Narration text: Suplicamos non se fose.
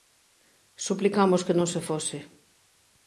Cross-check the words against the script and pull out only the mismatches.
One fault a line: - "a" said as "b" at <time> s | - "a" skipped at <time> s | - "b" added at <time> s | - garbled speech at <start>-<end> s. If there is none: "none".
- "que" added at 1.4 s